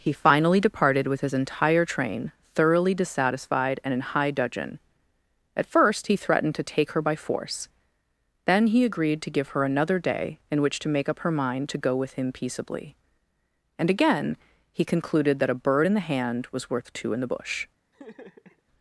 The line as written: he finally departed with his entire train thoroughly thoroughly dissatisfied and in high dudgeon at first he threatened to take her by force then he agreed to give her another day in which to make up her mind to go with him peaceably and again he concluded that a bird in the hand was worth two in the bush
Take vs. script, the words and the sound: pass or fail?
fail